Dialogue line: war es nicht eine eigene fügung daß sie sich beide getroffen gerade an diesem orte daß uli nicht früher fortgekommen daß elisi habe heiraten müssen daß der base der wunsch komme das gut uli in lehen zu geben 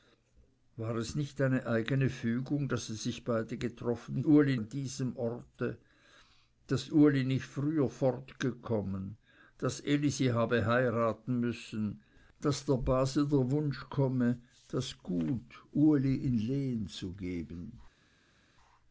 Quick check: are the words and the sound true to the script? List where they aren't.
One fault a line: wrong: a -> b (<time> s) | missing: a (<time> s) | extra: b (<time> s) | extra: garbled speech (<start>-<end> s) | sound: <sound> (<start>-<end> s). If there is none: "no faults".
wrong: gerade -> uli (4.3 s)